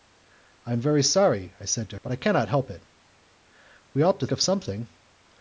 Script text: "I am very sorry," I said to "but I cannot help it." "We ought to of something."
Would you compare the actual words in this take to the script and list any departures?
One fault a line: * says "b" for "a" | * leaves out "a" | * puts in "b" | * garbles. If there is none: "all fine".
all fine